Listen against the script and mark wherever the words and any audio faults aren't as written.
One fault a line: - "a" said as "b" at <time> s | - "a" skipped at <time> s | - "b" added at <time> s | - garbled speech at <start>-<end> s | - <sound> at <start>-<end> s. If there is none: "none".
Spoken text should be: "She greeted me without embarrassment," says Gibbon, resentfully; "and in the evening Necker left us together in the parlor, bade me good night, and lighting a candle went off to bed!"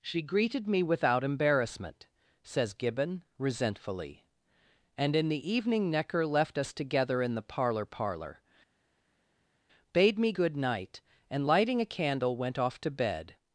- "parlor" added at 7.8 s